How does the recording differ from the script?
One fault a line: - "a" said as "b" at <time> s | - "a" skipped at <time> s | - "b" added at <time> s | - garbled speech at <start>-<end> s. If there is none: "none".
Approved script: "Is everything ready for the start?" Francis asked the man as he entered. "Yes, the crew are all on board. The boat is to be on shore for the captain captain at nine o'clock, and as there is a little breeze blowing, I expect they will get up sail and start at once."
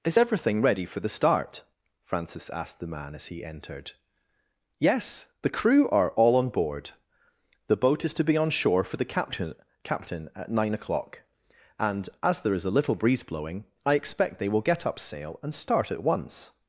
none